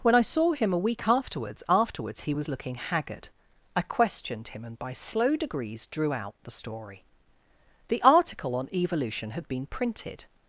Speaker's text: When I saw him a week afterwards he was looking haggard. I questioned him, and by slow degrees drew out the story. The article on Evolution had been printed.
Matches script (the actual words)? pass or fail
fail